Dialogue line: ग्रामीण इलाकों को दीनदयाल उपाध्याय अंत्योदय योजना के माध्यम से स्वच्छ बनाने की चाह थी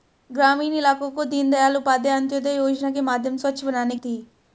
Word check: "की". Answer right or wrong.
wrong